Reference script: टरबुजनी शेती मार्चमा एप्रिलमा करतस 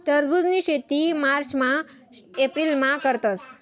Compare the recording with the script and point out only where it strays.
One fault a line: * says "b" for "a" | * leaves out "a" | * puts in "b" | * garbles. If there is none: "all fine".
all fine